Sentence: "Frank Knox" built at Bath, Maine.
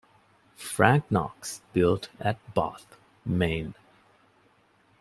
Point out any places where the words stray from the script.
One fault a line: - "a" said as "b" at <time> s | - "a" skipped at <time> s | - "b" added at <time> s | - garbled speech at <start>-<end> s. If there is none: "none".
none